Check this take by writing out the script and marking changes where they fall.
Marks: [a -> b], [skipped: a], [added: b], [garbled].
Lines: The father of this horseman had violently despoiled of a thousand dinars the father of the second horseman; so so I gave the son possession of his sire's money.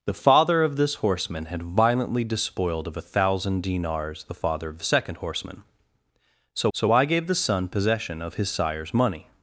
The father of this horseman had violently despoiled of a thousand dinars the father of the second horseman; so so I gave the son possession of his sire's money.